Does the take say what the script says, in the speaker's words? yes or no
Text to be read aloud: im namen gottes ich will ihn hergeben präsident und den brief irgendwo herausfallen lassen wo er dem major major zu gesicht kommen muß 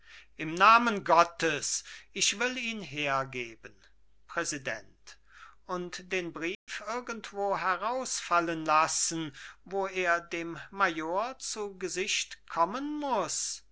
no